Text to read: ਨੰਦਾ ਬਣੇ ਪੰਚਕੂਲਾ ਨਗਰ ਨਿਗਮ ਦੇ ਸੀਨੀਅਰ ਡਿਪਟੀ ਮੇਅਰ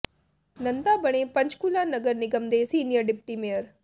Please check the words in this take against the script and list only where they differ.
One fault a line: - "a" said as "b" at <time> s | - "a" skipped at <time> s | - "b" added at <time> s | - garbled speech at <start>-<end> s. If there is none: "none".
none